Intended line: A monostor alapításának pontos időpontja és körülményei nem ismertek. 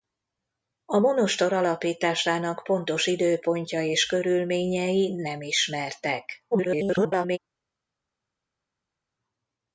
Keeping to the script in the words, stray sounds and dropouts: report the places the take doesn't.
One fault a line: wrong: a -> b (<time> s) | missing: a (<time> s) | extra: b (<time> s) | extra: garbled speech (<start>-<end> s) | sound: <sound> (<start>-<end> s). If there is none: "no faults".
extra: garbled speech (6.5-7.4 s)